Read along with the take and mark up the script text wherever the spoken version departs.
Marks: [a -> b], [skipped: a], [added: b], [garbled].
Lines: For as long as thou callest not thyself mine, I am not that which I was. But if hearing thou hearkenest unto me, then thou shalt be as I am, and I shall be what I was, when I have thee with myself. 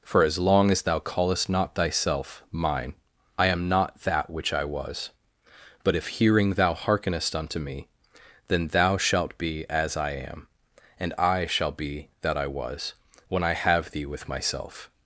For as long as thou callest not thyself mine, I am not that which I was. But if hearing thou hearkenest unto me, then thou shalt be as I am, and I shall be [what -> that] I was, when I have thee with myself.